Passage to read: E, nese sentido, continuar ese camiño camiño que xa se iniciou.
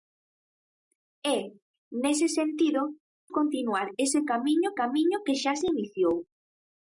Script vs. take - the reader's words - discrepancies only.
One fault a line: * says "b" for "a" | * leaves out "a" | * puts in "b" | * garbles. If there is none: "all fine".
all fine